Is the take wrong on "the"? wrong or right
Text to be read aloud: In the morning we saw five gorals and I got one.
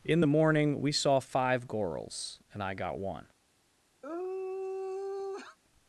right